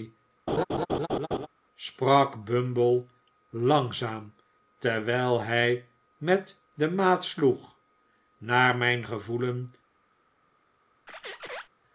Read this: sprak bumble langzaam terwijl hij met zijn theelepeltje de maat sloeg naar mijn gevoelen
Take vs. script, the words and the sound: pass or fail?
fail